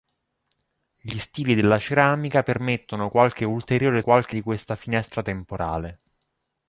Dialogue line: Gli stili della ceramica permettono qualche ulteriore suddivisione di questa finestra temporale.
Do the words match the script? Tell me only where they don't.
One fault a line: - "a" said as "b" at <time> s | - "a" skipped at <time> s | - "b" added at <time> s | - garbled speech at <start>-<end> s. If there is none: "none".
- "suddivisione" said as "qualche" at 4.0 s